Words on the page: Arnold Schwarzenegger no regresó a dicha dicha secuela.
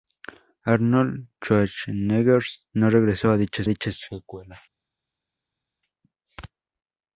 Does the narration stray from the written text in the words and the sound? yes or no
no